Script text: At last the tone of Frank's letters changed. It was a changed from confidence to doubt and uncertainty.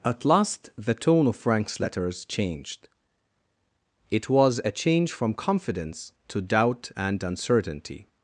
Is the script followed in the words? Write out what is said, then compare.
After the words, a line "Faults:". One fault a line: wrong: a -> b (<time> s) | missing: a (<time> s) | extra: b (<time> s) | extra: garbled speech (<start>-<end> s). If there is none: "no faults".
At last the tone of Frank's letters changed. It was a change from confidence to doubt and uncertainty.
Faults:
wrong: changed -> change (4.7 s)